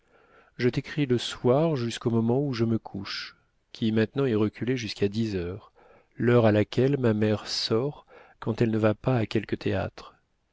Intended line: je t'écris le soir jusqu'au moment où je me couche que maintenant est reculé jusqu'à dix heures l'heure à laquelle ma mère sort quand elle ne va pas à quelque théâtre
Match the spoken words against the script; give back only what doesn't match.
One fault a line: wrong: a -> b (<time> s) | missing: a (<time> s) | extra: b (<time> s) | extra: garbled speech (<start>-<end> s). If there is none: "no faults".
wrong: que -> qui (3.7 s)